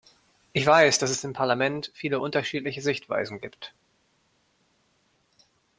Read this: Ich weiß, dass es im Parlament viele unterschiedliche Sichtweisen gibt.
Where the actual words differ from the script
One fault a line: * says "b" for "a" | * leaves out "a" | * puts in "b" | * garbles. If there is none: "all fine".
all fine